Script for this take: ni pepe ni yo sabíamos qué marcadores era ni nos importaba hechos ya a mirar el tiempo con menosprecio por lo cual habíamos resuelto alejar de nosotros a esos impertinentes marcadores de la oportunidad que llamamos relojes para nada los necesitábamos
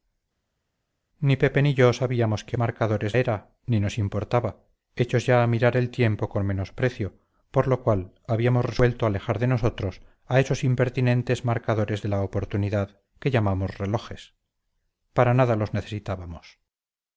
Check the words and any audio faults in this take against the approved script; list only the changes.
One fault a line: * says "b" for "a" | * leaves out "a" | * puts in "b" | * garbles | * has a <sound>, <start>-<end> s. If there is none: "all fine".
all fine